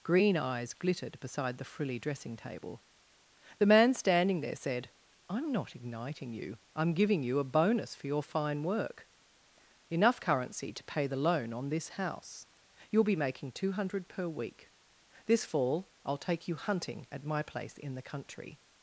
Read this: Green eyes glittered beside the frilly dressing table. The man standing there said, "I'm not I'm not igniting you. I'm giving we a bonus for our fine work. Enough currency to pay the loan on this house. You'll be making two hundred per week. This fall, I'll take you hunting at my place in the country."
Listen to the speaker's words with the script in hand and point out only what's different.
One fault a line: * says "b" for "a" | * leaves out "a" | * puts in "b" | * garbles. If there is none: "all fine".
* leaves out "I'm not"
* says "you" for "we"
* says "your" for "our"